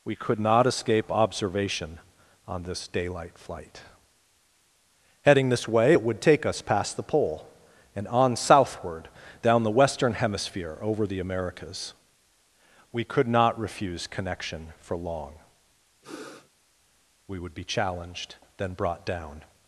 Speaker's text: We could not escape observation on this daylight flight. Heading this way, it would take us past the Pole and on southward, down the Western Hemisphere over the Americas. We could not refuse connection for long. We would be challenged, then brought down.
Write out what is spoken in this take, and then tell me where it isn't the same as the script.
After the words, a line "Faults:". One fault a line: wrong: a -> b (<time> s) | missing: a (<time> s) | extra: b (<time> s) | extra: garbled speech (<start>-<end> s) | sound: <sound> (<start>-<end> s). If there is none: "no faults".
We could not escape observation on this daylight flight. Heading this way, it would take us past the Pole and on southward, down the Western Hemisphere over the Americas. We could not refuse connection for long. We would be challenged, then brought down.
Faults:
sound: sniff (16.0-16.5 s)